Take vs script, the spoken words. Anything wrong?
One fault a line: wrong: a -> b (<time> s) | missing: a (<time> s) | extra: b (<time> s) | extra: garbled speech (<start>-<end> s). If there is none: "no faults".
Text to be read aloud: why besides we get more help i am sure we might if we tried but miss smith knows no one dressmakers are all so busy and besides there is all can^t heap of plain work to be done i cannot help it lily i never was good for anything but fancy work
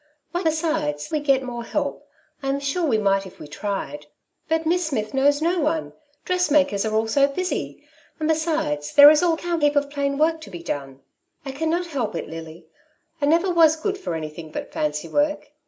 no faults